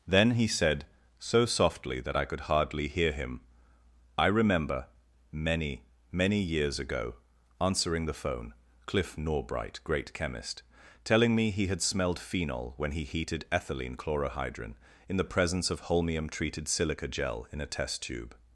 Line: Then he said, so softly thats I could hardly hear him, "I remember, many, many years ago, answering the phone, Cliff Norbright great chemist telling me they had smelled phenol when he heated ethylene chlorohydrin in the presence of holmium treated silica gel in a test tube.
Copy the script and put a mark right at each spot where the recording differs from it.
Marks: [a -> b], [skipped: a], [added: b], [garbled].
Then he said, so softly [thats -> that] I could hardly hear him, "I remember, many, many years ago, answering the phone, Cliff Norbright great chemist telling me [they -> he] had smelled phenol when he heated ethylene chlorohydrin in the presence of holmium treated silica gel in a test tube.